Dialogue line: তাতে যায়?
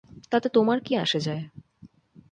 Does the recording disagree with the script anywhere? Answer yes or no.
yes